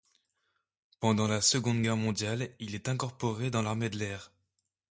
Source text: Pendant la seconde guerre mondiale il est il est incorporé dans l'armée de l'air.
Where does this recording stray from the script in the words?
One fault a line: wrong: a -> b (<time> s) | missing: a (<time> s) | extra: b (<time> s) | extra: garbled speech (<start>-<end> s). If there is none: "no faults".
missing: il est (2.9 s)